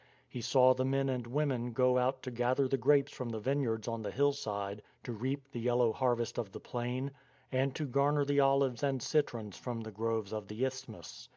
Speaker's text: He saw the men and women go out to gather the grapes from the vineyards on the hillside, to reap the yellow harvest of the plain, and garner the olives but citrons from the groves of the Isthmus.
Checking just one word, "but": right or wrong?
wrong